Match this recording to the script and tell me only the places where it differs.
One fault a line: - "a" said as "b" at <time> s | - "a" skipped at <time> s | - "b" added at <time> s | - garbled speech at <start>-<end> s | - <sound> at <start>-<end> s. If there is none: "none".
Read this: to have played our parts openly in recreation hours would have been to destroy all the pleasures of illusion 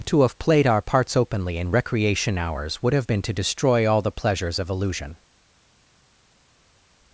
none